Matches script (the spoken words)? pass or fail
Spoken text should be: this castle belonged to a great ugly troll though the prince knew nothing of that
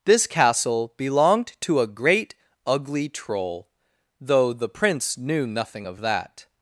pass